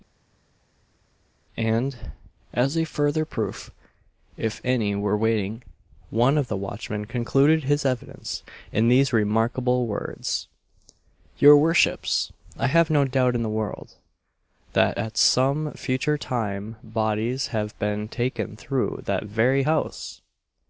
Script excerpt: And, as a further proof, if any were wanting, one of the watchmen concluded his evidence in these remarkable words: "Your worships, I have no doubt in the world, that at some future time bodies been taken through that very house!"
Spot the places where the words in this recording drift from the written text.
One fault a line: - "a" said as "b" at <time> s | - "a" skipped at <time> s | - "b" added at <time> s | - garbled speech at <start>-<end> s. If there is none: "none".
- "have" added at 17.5 s